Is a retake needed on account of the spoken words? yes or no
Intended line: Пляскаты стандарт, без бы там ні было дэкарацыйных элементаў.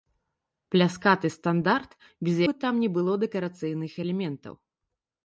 no